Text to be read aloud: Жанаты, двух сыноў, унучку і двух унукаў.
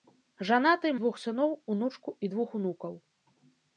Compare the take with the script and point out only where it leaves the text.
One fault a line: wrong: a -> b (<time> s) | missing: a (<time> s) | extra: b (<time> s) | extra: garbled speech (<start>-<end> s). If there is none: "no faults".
no faults